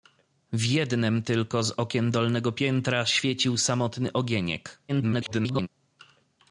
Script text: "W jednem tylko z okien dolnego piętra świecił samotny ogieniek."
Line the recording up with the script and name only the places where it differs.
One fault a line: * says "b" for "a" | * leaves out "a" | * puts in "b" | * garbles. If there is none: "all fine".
* garbles